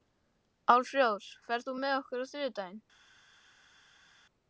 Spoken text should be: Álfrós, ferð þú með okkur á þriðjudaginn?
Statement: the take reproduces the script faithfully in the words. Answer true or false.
true